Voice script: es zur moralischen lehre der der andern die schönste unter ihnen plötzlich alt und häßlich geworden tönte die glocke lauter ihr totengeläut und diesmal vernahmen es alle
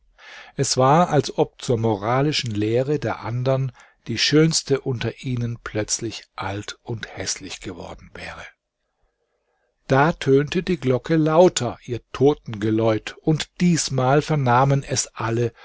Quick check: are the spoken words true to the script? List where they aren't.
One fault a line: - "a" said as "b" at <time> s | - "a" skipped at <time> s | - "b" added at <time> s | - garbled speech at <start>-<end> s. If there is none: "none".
- "war als ob" added at 0.8 s
- "der" skipped at 3.2 s
- "wäre da" added at 8.1 s